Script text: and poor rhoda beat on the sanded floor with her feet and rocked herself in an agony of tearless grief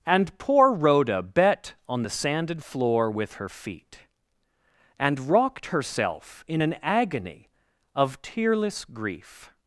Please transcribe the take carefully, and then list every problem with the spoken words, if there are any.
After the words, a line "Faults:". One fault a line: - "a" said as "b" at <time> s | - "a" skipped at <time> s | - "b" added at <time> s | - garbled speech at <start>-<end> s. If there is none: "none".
and poor rhoda bet on the sanded floor with her feet and rocked herself in an agony of tearless grief
Faults:
- "beat" said as "bet" at 1.2 s